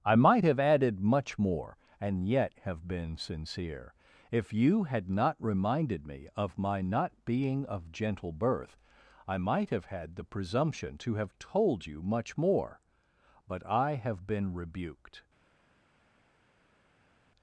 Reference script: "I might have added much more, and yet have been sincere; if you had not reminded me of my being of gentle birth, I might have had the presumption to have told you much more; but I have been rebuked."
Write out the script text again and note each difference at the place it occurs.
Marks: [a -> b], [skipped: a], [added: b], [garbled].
"I might have added much more, and yet have been sincere; if you had not reminded me of my [added: not] being of gentle birth, I might have had the presumption to have told you much more; but I have been rebuked."